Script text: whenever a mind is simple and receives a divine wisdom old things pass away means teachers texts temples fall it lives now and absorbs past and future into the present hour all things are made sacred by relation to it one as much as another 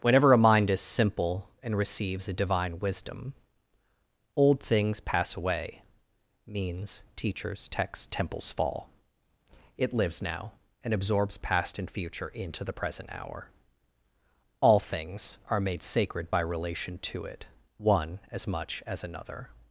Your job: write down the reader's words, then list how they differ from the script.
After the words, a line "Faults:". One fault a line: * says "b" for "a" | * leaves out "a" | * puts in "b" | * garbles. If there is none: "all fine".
whenever a mind is simple and receives a divine wisdom old things pass away means teachers texts temples fall it lives now and absorbs past and future into the present hour all things are made sacred by relation to it one as much as another
Faults:
all fine